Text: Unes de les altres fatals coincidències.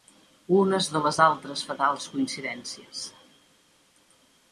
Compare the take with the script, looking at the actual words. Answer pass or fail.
pass